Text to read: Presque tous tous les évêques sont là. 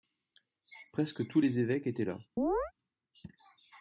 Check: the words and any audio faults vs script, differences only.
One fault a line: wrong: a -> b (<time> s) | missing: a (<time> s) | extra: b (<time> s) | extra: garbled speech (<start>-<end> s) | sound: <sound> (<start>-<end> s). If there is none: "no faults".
missing: tous (1.4 s)
wrong: sont -> étaient (1.9 s)
sound: chirp (2.4-2.7 s)